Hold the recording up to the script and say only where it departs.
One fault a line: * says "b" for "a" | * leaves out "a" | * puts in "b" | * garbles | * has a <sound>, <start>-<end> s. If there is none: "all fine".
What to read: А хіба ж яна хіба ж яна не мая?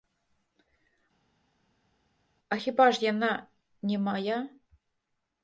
* leaves out "хіба ж яна"